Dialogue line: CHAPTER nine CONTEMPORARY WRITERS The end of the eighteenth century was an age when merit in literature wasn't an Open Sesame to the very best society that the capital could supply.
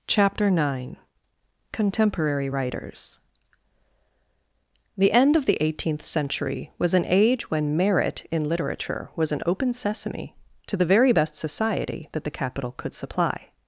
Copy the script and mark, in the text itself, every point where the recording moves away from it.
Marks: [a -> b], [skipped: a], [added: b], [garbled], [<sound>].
CHAPTER nine CONTEMPORARY WRITERS The end of the eighteenth century was an age when merit in literature [wasn't -> was] an Open Sesame to the very best society that the capital could supply.